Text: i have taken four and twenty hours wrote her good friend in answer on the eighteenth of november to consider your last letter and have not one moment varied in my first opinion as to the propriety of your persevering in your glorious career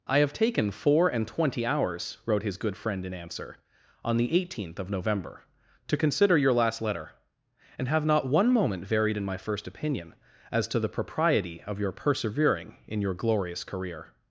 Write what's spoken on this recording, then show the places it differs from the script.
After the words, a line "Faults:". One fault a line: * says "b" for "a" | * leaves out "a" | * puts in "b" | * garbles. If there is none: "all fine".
i have taken four and twenty hours wrote his good friend in answer on the eighteenth of november to consider your last letter and have not one moment varied in my first opinion as to the propriety of your persevering in your glorious career
Faults:
* says "his" for "her"